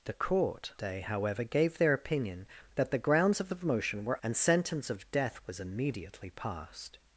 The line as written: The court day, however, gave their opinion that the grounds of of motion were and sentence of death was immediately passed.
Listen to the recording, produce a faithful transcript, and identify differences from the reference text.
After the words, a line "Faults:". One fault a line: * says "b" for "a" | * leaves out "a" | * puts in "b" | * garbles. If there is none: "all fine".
The court day, however, gave their opinion that the grounds of of motion were and sentence of death was immediately passed.
Faults:
all fine